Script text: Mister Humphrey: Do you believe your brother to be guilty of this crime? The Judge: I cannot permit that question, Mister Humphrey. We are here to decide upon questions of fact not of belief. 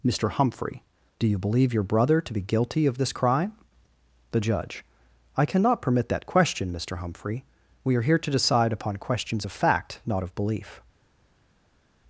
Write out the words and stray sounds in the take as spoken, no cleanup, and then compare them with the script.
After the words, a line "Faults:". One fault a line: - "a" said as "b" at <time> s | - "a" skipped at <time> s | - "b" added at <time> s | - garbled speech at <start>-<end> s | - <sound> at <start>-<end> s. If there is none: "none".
Mister Humphrey: Do you believe your brother to be guilty of this crime? The Judge: I cannot permit that question, Mister Humphrey. We are here to decide upon questions of fact not of belief.
Faults:
none